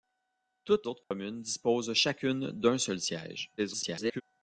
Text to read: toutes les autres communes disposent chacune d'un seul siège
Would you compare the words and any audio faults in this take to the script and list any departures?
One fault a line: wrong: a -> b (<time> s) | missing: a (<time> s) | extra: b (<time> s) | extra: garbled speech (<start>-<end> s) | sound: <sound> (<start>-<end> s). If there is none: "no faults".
missing: les (0.9 s)
sound: dropout (1.0-1.1 s)
extra: garbled speech (3.6-4.2 s)